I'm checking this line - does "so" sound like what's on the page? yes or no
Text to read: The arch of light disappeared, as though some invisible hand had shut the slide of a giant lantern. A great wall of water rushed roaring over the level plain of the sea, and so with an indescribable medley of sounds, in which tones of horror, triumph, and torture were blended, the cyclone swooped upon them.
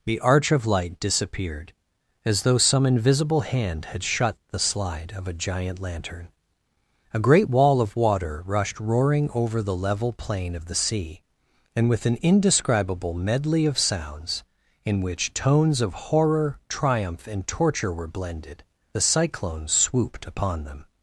no